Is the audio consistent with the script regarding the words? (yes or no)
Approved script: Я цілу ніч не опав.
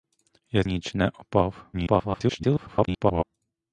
no